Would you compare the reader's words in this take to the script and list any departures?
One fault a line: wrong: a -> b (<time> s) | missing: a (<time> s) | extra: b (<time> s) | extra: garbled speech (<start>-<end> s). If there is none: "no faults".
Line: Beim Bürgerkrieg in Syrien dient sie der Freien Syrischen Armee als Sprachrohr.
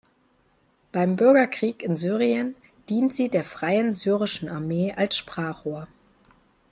no faults